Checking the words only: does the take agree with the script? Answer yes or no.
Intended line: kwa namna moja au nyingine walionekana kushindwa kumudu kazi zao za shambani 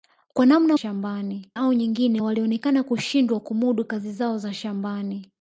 no